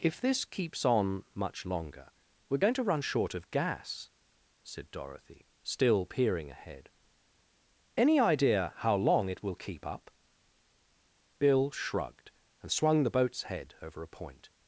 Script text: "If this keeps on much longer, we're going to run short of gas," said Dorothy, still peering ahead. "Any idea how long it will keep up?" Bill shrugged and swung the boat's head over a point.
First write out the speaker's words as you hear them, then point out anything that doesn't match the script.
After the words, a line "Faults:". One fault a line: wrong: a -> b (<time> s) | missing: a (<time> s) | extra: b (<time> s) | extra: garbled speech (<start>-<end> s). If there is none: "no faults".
"If this keeps on much longer, we're going to run short of gas," said Dorothy, still peering ahead. "Any idea how long it will keep up?" Bill shrugged and swung the boat's head over a point.
Faults:
no faults